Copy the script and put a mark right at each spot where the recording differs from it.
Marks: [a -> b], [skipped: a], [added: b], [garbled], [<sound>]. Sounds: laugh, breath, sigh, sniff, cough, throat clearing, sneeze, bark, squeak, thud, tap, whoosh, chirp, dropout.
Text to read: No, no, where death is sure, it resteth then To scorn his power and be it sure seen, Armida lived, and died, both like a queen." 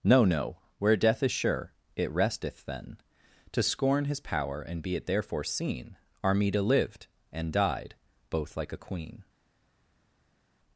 No, no, where death is sure, it resteth then To scorn his power and be it [sure -> therefore] seen, Armida lived, and died, both like a queen."